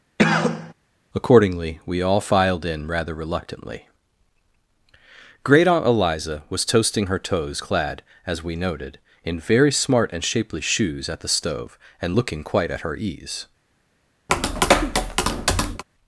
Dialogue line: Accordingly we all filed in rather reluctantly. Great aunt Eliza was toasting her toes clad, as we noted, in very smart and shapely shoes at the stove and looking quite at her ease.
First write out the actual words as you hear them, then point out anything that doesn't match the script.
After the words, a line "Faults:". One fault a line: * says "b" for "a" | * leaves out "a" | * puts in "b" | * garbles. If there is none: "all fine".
Accordingly we all filed in rather reluctantly. Great aunt Eliza was toasting her toes clad, as we noted, in very smart and shapely shoes at the stove and looking quite at her ease.
Faults:
all fine